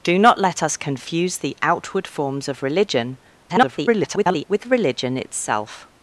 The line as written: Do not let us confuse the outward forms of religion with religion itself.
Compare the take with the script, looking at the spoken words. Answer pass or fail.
fail